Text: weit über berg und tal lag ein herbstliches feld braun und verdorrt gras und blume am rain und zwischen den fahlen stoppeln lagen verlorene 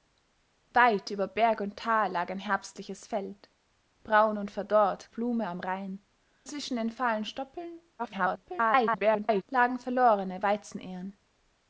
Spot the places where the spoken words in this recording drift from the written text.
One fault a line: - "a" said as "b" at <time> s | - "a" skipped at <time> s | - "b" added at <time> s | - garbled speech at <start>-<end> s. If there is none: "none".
- "gras und" skipped at 5.1 s
- "und" skipped at 6.0 s
- garbled speech at 8.0-9.4 s